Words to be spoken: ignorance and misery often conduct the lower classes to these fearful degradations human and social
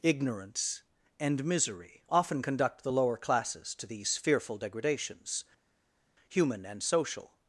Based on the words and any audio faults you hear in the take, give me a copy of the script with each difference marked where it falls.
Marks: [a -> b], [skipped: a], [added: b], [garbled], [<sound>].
ignorance and misery often conduct the lower classes to these fearful degradations human and social